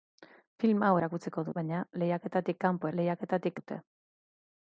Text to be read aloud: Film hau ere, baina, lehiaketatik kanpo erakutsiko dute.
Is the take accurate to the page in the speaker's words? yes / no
no